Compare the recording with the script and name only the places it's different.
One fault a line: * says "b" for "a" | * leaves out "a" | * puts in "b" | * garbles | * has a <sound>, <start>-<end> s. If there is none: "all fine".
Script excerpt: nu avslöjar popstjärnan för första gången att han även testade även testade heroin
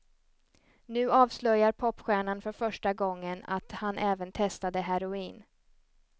* leaves out "även testade"